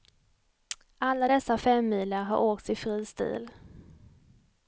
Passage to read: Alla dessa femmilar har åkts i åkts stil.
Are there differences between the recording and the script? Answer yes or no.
yes